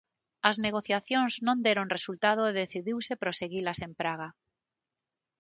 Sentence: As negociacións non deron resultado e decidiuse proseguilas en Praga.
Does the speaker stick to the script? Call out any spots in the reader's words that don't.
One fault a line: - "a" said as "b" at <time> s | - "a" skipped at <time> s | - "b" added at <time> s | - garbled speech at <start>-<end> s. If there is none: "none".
none